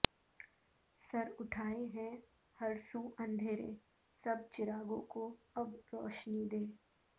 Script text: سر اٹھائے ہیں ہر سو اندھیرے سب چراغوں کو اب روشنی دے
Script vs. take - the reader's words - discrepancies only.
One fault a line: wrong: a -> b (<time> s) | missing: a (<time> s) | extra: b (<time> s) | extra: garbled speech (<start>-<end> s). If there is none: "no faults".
no faults